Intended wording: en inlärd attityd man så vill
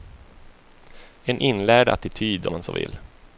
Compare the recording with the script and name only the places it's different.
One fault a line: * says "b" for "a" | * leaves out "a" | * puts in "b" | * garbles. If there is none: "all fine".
all fine